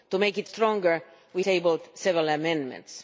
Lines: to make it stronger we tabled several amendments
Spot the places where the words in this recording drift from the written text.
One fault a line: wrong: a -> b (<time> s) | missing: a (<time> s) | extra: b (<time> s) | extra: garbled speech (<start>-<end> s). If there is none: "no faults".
no faults